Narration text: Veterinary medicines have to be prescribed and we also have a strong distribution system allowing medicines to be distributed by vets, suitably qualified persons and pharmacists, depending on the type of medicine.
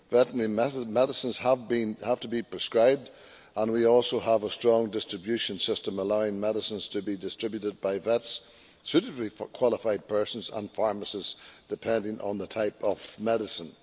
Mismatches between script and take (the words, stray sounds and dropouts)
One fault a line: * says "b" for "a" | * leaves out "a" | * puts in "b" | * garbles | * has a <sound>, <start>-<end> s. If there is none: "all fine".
all fine